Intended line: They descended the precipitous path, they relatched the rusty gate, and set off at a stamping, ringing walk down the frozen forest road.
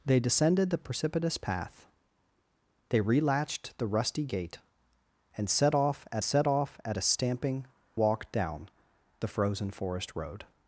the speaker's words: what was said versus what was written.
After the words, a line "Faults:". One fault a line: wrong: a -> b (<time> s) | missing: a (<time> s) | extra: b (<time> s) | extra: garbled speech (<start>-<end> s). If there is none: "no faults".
They descended the precipitous path, they relatched the rusty gate, and set off at set off at a stamping, walk down the frozen forest road.
Faults:
extra: set off at (6.2 s)
missing: ringing (7.6 s)